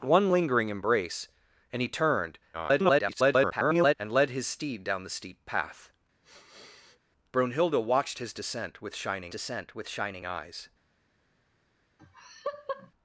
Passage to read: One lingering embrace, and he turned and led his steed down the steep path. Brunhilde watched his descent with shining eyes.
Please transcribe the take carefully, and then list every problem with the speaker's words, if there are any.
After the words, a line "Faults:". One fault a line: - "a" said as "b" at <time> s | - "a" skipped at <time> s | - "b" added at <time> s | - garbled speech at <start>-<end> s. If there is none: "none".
One lingering embrace, and he turned [garbled] and led his steed down the steep path. Brunhilde watched his descent with shining descent with shining eyes.
Faults:
- garbled speech at 2.5-3.9 s
- "descent with shining" added at 9.3 s